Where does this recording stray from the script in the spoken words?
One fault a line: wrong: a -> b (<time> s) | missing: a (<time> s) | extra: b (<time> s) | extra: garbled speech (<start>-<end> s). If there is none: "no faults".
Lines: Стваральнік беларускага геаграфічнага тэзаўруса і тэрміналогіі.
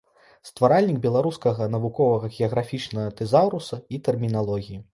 extra: навуковага (1.8 s)